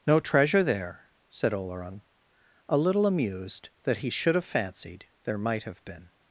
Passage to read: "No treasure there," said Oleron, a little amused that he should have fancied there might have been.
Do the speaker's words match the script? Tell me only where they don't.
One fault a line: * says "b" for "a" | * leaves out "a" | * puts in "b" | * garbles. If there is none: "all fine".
all fine